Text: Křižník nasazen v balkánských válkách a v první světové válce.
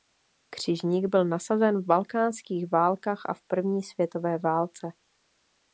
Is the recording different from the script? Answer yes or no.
yes